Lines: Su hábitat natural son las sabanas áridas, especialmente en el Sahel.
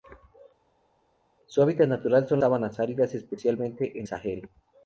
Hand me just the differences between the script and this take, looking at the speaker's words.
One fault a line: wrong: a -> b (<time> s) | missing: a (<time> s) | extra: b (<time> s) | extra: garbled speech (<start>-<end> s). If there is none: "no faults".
missing: las (2.4 s)
missing: el (4.1 s)